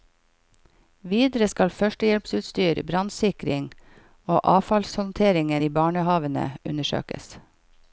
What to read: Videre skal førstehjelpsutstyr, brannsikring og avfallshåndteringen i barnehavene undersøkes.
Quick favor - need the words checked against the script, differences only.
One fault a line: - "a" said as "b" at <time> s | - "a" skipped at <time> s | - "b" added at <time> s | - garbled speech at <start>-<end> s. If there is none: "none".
none